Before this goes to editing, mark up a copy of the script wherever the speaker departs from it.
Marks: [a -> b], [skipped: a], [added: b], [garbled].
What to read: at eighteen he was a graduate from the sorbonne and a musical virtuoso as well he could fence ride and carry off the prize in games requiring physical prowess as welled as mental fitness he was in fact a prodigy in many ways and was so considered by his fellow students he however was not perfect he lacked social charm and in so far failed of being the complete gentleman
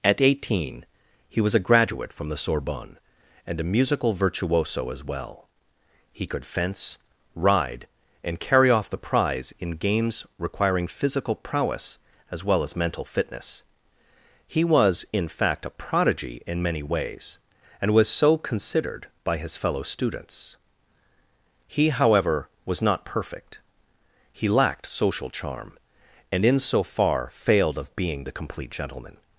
at eighteen he was a graduate from the sorbonne and a musical virtuoso as well he could fence ride and carry off the prize in games requiring physical prowess as [welled -> well] as mental fitness he was in fact a prodigy in many ways and was so considered by his fellow students he however was not perfect he lacked social charm and in so far failed of being the complete gentleman